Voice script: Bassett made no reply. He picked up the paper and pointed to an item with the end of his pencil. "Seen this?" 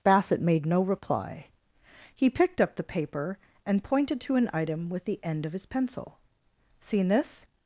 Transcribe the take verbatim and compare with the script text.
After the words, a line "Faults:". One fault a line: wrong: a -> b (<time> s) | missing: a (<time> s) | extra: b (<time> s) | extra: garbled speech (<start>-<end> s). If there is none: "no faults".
Bassett made no reply. He picked up the paper and pointed to an item with the end of his pencil. "Seen this?"
Faults:
no faults